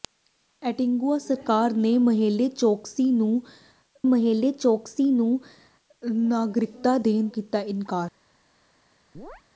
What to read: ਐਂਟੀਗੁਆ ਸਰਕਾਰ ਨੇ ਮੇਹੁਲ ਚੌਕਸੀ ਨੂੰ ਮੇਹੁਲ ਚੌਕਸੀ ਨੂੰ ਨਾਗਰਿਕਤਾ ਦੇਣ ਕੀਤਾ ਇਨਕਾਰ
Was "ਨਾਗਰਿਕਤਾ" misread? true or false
false